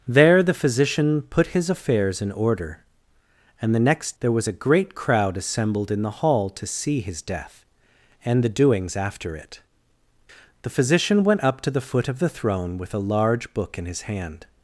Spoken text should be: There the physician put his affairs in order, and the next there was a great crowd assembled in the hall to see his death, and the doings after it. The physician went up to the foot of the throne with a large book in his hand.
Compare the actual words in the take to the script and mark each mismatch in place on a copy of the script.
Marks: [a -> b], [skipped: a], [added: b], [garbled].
There the physician put his affairs in order, and the next there was a great crowd assembled in the hall to see his death, and the doings after it. The physician went up to the foot of the throne with a large book in his hand.